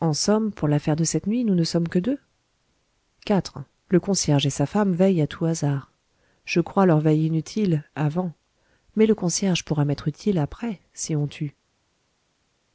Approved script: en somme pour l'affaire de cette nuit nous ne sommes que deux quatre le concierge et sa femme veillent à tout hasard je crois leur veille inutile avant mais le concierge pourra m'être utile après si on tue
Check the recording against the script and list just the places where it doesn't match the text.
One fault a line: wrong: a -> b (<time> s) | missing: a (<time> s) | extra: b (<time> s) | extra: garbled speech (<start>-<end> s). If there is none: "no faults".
no faults